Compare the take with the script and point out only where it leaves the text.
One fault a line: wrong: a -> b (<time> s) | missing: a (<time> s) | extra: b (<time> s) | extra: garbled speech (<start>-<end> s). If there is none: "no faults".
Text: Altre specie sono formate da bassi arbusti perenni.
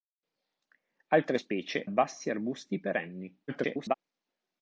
missing: sono formate da (1.9 s)
extra: garbled speech (3.5-3.9 s)